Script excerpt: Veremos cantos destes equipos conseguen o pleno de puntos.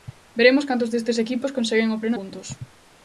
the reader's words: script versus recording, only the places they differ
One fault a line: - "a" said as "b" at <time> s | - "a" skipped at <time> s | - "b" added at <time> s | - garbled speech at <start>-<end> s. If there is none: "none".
- "de" skipped at 2.2 s